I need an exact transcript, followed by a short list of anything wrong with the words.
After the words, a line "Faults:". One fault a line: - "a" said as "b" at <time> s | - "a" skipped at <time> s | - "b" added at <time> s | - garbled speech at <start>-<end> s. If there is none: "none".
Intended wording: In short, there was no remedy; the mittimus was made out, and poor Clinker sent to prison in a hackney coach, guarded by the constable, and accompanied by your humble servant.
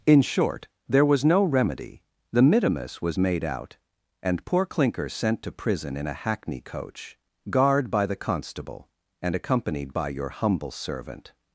In short, there was no remedy; the mittimus was made out, and poor Clinker sent to prison in a hackney coach, guard by the constable, and accompanied by your humble servant.
Faults:
- "guarded" said as "guard" at 7.5 s